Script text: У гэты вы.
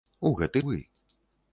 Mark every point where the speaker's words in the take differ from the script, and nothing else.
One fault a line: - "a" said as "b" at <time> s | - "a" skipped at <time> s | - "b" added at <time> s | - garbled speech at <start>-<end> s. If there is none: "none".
none